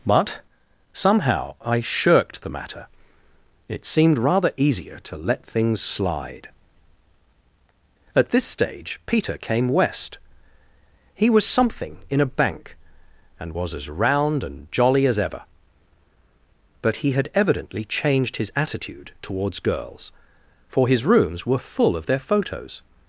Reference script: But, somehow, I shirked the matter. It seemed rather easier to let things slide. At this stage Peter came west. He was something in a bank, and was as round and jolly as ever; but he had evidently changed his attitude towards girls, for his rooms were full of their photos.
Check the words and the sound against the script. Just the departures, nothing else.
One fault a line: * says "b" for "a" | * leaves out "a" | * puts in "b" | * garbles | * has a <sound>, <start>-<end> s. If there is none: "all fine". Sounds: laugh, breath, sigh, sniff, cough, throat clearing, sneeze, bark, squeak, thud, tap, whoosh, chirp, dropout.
all fine